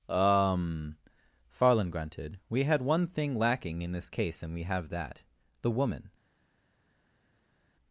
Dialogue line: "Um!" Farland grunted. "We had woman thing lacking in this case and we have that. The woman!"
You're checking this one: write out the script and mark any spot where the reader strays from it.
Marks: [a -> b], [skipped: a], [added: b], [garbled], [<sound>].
"Um!" Farland grunted. "We had [woman -> one] thing lacking in this case and we have that. The woman!"